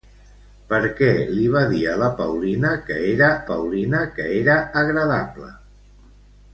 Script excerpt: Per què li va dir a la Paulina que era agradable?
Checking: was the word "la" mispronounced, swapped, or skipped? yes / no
no